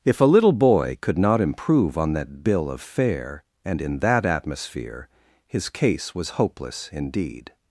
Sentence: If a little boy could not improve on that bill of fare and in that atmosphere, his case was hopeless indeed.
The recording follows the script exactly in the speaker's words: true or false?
true